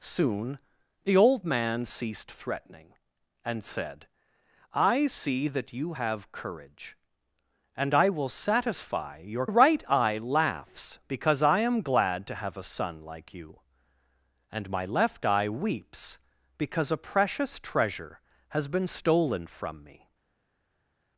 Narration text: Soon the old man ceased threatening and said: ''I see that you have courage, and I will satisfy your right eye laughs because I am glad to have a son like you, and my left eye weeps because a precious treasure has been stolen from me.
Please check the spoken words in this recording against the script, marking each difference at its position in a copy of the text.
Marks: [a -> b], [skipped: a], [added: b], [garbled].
Soon the old man ceased threatening and said: ''I see that you have courage, and I will satisfy your right eye laughs because I am glad to have a son like you, and my left eye weeps because a precious treasure has been stolen from me.